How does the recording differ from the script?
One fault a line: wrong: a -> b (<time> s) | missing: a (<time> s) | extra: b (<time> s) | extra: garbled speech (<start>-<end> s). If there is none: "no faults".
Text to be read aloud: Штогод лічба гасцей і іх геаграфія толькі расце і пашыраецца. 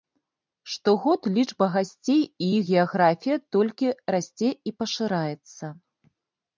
no faults